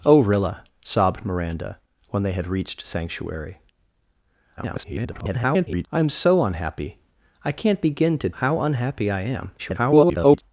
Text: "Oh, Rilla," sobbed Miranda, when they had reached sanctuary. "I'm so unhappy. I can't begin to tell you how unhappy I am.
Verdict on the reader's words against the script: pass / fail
fail